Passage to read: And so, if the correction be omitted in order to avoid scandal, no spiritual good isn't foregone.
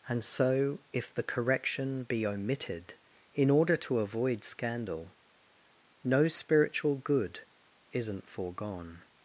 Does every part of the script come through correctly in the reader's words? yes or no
yes